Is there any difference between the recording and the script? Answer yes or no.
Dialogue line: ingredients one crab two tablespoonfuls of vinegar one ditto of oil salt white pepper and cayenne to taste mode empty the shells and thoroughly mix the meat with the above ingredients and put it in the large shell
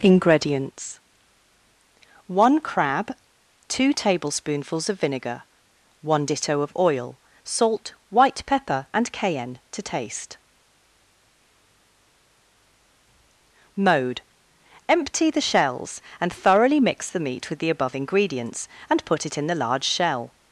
no